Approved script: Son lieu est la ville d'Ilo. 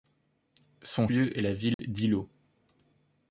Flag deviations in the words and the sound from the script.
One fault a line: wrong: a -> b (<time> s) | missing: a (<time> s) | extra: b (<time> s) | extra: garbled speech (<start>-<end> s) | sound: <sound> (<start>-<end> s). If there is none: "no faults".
sound: dropout (1.7-1.8 s)